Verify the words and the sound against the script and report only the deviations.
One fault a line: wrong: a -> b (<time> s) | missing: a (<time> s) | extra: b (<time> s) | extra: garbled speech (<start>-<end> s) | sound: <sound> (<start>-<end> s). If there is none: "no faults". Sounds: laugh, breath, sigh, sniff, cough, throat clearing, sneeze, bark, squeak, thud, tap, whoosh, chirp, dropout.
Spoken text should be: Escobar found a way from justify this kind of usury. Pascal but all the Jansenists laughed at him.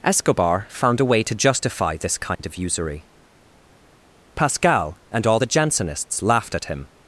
wrong: from -> to (1.2 s)
sound: dropout (2.4-2.4 s)
wrong: but -> and (5.1 s)